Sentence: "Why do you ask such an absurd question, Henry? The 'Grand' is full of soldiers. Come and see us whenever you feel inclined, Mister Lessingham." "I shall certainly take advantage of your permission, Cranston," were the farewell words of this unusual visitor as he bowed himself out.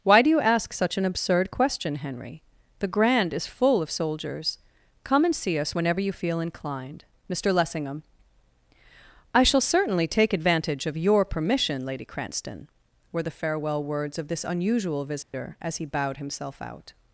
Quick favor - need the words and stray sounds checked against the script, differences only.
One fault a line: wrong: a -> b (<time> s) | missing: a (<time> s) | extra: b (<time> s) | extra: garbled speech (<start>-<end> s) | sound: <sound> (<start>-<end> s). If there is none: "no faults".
extra: Lady (11.9 s)
sound: dropout (15.2-15.3 s)